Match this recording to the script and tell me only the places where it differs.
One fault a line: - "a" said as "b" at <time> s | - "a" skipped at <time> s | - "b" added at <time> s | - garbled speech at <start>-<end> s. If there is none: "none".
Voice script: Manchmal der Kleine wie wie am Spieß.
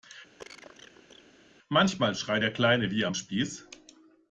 - "schreit" added at 2.2 s
- "wie" skipped at 3.1 s